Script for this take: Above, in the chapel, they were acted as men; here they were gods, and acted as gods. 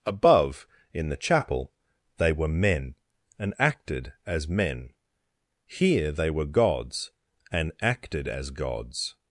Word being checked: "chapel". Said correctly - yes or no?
yes